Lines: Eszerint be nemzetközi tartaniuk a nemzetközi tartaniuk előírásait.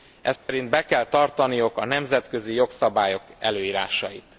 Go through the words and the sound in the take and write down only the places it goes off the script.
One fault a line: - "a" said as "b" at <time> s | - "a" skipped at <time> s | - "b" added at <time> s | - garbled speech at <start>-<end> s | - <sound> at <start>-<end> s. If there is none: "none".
- dropout at 0.4-0.5 s
- "nemzetközi" said as "kell" at 0.8 s
- "tartaniuk" said as "jogszabályok" at 2.5 s